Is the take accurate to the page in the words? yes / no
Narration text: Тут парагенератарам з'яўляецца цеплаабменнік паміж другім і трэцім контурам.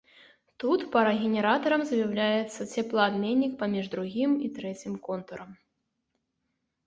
yes